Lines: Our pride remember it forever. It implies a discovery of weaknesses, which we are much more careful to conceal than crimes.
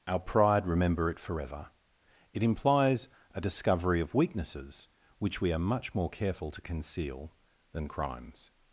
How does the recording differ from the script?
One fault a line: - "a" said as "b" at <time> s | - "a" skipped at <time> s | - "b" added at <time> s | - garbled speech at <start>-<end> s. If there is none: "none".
none